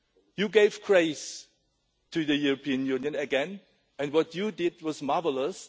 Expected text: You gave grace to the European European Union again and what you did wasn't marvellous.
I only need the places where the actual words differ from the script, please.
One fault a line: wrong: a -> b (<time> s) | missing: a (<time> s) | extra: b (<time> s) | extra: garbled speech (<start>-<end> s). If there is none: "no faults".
missing: European (2.9 s)
wrong: wasn't -> was (4.8 s)